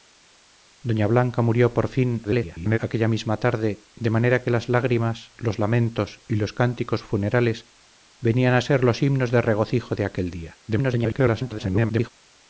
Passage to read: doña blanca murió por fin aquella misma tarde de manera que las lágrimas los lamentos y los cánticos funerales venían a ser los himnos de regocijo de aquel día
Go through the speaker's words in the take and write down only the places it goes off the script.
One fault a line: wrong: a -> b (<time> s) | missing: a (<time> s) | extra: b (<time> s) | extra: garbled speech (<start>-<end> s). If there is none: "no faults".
extra: garbled speech (2.2-2.8 s)
extra: garbled speech (10.7-12.1 s)